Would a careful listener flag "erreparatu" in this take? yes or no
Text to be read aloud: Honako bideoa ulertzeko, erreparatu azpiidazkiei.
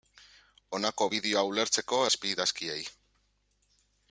yes